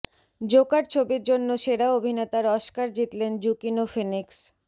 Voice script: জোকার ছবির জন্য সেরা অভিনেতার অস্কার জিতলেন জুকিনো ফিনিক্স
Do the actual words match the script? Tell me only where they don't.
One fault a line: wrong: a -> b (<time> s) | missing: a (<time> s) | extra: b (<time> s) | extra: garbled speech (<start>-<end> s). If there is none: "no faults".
no faults